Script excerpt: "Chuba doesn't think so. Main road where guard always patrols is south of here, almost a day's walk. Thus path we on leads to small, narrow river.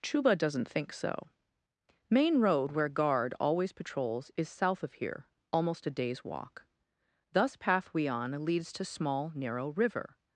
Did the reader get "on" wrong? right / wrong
right